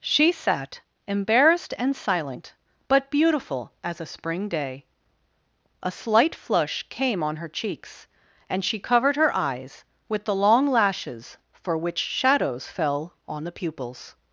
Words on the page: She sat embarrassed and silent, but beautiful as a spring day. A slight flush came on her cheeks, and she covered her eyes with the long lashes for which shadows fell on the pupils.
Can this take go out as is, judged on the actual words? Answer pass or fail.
pass